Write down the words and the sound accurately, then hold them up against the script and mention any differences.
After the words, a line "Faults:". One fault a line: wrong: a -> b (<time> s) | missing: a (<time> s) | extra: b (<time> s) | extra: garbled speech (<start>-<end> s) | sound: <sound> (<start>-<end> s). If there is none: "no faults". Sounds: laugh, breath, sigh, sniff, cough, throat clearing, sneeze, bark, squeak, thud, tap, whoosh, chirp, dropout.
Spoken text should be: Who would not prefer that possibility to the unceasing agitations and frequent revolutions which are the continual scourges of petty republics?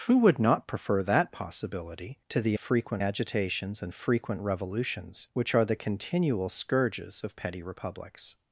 Who would not prefer that possibility to the frequent agitations and frequent revolutions which are the continual scourges of petty republics?
Faults:
wrong: unceasing -> frequent (2.6 s)